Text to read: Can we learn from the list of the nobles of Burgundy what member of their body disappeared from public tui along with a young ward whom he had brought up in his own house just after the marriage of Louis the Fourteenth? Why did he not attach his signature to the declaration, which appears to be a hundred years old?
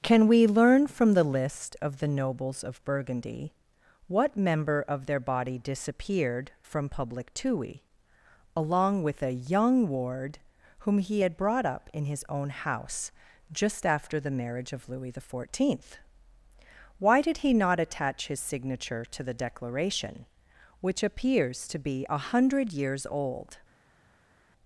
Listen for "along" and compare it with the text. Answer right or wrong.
right